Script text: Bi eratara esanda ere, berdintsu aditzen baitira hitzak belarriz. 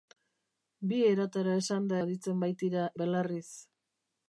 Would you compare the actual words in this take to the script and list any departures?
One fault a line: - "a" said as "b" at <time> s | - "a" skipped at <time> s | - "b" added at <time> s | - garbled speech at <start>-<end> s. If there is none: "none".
- "ere berdintsu" skipped at 2.0 s
- "hitzak" skipped at 2.9 s